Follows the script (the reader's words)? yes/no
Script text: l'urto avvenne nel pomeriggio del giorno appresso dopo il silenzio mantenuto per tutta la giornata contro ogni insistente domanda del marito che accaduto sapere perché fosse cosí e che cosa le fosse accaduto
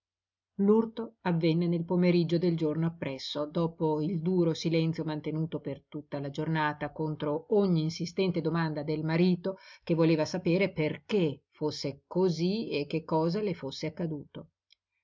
no